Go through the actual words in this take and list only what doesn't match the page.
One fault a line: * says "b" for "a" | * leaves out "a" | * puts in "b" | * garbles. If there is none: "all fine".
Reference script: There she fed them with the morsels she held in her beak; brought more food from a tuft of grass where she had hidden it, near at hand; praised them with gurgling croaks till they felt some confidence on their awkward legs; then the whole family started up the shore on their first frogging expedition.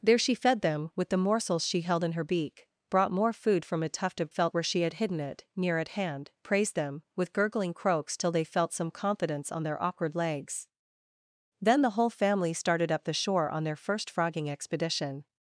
* says "felt" for "grass"